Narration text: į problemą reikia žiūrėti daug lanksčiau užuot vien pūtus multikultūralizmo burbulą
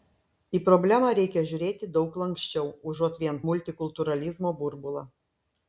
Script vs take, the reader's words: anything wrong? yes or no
yes